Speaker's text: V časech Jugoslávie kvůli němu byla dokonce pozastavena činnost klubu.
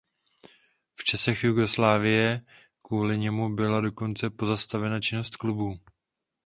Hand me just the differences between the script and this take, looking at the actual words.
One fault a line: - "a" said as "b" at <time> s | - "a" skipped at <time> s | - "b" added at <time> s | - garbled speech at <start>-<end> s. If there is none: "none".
none